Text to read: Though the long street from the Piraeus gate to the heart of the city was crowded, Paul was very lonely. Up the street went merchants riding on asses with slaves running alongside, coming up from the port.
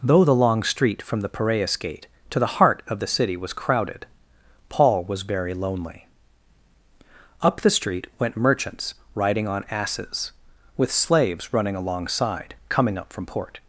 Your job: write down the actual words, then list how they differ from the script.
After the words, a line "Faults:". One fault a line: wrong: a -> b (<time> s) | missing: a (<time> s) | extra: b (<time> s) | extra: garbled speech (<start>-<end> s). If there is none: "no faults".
Though the long street from the Piraeus gate to the heart of the city was crowded, Paul was very lonely. Up the street went merchants riding on asses with slaves running alongside, coming up from port.
Faults:
missing: the (13.3 s)